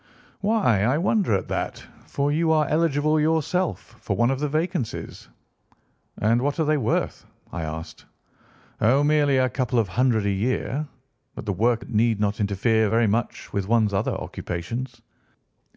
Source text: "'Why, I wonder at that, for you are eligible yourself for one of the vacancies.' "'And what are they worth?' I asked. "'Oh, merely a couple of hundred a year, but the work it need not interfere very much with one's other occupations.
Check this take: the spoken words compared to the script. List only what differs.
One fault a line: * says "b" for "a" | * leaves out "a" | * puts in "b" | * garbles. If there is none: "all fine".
all fine